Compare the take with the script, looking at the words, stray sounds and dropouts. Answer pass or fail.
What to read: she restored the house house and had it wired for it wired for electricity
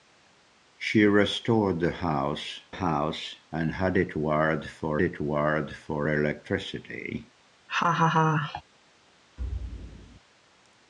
fail